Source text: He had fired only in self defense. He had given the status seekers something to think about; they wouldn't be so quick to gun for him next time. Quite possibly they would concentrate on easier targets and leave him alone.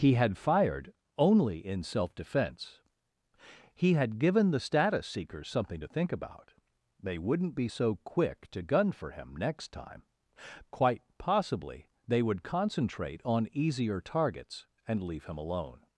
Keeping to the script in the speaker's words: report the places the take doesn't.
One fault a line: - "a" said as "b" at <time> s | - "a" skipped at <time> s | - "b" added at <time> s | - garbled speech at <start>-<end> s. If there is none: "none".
none